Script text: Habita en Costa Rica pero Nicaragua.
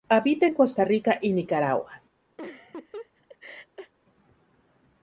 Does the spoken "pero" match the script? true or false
false